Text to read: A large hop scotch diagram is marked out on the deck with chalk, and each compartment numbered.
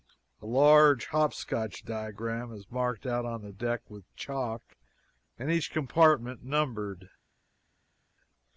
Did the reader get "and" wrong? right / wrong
right